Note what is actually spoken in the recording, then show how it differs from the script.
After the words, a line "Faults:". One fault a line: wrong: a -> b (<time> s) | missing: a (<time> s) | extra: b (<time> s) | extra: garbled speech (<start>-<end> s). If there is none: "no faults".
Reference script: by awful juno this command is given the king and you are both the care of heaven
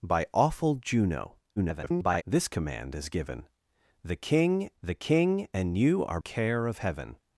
by awful juno [garbled] this command is given the king the king and you are care of heaven
Faults:
extra: garbled speech (1.6-2.2 s)
extra: the king (4.8 s)
missing: both the (6.2 s)